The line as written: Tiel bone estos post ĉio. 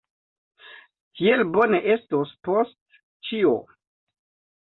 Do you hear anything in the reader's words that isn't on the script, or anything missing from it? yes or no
no